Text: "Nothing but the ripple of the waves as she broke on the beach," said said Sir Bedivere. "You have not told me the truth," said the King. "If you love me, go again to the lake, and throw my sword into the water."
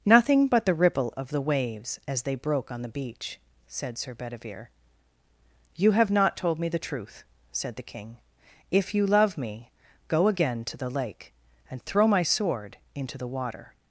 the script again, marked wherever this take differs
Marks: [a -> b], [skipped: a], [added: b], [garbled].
"Nothing but the ripple of the waves as [she -> they] broke on the beach," said [skipped: said] Sir Bedivere. "You have not told me the truth," said the King. "If you love me, go again to the lake, and throw my sword into the water."